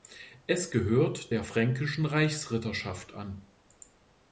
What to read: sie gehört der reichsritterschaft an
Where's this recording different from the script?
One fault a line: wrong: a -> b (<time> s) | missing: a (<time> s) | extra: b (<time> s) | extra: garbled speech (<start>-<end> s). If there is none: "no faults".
wrong: sie -> es (0.5 s)
extra: fränkischen (1.4 s)